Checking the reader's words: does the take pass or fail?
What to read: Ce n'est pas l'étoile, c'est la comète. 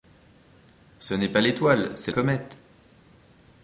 fail